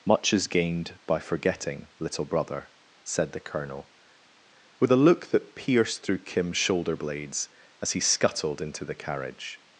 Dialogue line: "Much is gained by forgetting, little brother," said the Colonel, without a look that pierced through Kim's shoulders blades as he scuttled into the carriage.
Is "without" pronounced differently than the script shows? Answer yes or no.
yes